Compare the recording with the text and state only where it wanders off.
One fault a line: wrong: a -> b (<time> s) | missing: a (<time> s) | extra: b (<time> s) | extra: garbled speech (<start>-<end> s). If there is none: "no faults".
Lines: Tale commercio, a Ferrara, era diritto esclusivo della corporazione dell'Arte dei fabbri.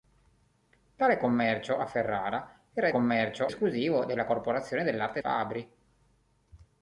wrong: diritto -> commercio (2.9 s)
missing: dei (5.2 s)